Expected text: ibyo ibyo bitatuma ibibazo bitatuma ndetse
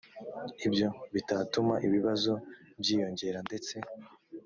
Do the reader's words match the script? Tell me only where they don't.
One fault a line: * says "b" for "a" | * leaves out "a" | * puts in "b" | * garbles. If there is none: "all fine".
* leaves out "ibyo"
* says "byiyongera" for "bitatuma"